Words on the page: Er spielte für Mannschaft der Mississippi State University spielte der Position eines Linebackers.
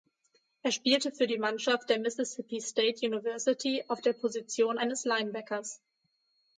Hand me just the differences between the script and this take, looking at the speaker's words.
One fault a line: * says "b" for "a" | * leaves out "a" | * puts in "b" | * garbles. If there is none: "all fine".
* puts in "die"
* says "auf" for "spielte"